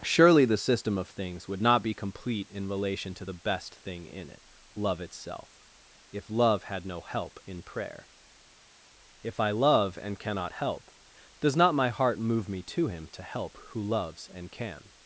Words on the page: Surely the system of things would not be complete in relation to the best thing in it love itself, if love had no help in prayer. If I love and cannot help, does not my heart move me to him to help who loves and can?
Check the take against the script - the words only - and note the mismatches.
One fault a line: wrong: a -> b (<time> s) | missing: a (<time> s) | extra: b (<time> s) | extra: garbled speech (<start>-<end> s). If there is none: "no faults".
no faults